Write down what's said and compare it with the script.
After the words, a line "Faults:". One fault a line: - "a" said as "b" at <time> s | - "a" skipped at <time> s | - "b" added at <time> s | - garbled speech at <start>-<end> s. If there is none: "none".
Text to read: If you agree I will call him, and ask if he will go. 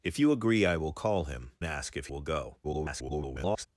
If you agree I will call him, ask if will go. [garbled]
Faults:
- "and" skipped at 1.5 s
- "he" skipped at 2.1 s
- garbled speech at 2.6-3.7 s